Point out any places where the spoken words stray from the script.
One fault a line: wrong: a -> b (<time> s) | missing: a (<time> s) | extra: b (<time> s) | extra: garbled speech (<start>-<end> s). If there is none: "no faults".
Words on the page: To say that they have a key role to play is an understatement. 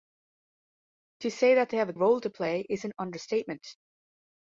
missing: key (1.9 s)